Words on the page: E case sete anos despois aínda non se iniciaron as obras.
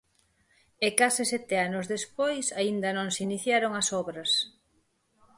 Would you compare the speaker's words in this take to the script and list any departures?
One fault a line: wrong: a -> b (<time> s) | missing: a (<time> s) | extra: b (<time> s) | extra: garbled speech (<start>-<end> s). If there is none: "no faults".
no faults